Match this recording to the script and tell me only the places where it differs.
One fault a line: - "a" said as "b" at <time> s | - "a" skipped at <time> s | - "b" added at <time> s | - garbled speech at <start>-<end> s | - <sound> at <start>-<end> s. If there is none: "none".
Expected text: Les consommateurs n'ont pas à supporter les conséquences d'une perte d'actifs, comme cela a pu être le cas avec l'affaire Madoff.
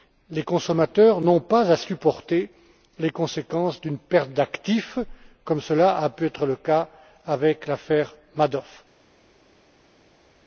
none